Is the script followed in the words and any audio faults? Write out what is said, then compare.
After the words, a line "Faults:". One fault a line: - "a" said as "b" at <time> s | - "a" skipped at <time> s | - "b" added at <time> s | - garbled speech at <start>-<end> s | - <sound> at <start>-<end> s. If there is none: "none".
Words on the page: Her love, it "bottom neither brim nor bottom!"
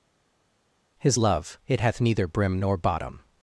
His love, it "hath neither brim nor bottom!"
Faults:
- "Her" said as "His" at 1.0 s
- "bottom" said as "hath" at 1.8 s